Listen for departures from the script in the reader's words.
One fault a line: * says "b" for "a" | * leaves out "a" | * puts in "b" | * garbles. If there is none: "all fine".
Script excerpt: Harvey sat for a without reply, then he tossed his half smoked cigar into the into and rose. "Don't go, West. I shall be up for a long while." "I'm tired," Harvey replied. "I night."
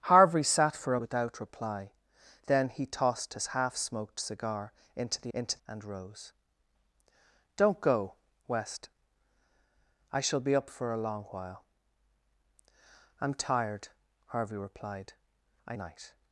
all fine